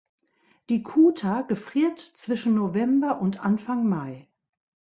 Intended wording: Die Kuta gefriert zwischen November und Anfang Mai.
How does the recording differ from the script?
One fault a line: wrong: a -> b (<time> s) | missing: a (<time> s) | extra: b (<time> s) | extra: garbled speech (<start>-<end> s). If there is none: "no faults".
no faults